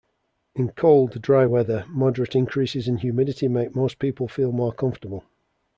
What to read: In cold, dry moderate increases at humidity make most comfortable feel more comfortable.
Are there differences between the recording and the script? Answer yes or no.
yes